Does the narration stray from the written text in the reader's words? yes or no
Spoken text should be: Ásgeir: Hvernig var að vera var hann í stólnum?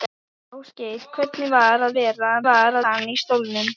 no